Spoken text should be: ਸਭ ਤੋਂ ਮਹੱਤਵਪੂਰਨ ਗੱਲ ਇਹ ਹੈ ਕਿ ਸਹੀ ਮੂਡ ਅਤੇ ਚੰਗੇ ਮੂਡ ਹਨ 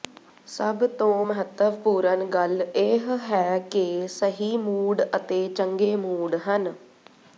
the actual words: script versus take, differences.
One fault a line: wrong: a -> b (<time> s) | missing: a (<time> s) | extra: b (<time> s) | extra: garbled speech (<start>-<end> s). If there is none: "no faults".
no faults